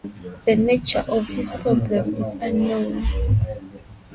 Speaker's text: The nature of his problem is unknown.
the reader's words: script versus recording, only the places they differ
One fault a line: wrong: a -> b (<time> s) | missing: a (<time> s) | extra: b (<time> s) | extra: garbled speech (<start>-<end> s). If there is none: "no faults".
no faults